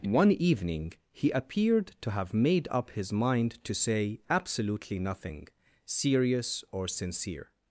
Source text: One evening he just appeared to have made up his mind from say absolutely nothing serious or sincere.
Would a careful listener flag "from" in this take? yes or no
yes